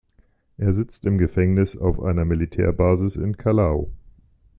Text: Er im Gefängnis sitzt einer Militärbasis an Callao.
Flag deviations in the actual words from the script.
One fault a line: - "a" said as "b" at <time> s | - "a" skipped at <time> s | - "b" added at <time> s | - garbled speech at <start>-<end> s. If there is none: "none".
- "sitzt" added at 0.7 s
- "sitzt" said as "auf" at 1.8 s
- "an" said as "in" at 3.2 s